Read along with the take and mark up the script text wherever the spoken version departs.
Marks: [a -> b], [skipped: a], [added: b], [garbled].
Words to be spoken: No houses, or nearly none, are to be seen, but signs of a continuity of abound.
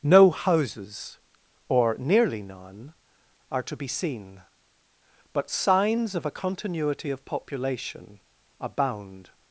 No houses, or nearly none, are to be seen, but signs of a continuity of [added: population] abound.